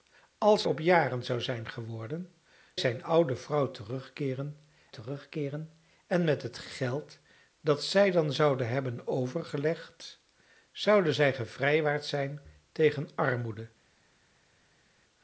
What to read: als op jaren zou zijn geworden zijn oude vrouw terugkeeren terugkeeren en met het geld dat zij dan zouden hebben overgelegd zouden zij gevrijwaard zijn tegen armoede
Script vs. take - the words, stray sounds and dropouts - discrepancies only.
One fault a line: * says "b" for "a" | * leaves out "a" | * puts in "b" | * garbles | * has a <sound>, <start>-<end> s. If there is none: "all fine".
all fine